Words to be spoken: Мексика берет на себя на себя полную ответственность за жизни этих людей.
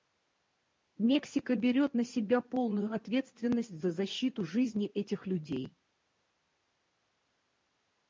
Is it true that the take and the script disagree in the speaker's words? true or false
true